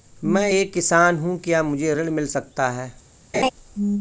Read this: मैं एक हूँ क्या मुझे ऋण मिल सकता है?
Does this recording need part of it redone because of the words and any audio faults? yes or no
yes